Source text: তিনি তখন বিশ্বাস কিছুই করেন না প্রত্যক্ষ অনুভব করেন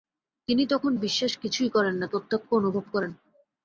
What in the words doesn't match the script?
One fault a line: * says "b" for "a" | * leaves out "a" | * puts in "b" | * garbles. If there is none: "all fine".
all fine